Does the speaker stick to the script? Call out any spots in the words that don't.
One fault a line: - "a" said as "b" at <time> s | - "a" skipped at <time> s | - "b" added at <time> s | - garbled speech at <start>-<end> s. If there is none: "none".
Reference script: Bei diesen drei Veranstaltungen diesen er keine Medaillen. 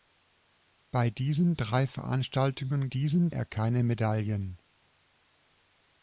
none